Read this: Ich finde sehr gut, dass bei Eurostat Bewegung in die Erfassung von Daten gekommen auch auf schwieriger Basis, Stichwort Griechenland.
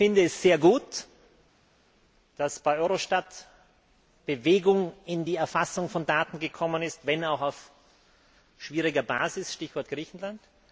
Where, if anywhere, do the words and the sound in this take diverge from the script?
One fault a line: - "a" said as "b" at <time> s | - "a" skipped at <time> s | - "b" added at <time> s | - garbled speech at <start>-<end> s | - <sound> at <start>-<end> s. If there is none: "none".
- "es" added at 0.2 s
- "ist wenn" added at 6.8 s